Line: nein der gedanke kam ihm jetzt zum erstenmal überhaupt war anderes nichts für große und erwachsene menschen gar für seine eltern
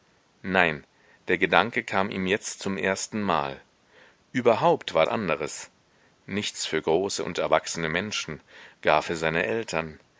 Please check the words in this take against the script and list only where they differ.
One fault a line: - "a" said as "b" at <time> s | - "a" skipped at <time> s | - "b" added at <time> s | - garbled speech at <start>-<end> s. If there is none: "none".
none